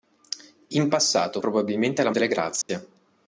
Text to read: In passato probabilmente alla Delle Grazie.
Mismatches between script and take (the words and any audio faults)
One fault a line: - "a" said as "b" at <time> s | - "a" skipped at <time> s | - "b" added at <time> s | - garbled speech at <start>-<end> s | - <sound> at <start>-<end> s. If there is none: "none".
- dropout at 2.6-2.7 s